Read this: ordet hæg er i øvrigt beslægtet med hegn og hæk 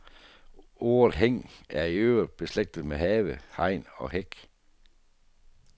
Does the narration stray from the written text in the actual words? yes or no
yes